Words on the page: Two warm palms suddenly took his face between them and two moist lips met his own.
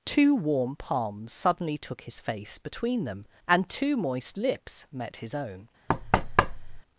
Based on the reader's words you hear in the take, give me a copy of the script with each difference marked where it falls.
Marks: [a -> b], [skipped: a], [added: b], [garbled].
Two warm palms suddenly took his face between them and two moist lips met his own.